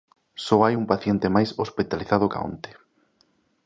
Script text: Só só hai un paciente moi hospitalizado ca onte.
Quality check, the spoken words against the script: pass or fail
fail